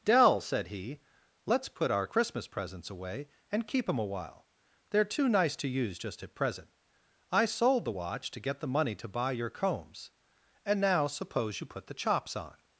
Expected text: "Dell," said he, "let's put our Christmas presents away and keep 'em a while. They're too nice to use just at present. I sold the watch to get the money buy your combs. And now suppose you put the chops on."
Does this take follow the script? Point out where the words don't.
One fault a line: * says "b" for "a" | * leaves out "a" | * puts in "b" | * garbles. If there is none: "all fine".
* puts in "to"